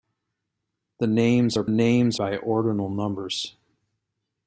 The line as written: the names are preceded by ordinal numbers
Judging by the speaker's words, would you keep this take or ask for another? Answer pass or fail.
fail